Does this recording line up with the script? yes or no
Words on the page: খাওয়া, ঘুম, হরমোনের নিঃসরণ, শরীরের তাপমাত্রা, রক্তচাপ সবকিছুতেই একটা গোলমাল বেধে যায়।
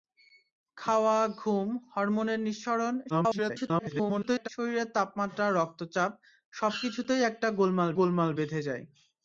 no